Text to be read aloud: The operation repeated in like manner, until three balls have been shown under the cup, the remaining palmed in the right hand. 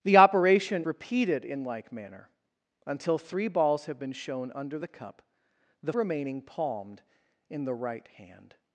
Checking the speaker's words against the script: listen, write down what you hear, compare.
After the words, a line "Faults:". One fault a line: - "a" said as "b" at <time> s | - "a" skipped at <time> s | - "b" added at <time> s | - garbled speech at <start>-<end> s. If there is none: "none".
The operation repeated in like manner, until three balls have been shown under the cup, the remaining palmed in the right hand.
Faults:
none